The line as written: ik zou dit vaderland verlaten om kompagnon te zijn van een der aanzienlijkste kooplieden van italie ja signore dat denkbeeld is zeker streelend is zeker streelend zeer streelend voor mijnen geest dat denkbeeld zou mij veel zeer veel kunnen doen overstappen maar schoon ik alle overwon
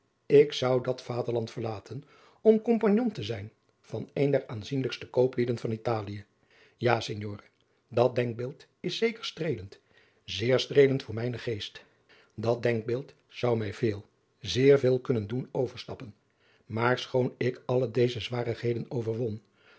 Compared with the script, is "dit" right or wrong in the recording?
wrong